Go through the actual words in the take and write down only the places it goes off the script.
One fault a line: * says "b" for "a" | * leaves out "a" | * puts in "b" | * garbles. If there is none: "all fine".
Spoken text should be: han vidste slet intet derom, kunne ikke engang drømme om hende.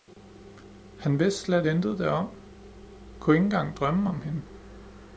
all fine